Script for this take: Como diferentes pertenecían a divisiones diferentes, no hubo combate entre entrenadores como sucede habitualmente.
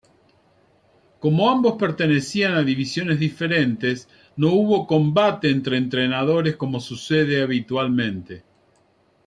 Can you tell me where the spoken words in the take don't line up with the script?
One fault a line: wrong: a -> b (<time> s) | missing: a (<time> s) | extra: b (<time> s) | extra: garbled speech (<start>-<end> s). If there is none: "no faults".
wrong: diferentes -> ambos (1.5 s)